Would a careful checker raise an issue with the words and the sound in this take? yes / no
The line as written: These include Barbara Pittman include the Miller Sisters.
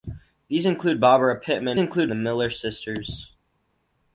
no